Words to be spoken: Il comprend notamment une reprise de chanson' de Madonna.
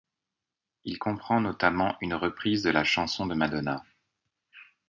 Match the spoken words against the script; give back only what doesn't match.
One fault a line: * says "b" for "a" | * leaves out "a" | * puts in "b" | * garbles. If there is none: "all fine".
* puts in "la"